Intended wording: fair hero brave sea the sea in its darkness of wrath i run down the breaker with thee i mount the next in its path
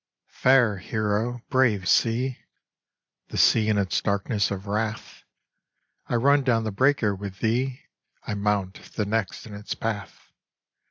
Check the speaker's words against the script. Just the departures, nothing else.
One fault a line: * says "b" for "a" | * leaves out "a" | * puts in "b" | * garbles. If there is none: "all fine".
all fine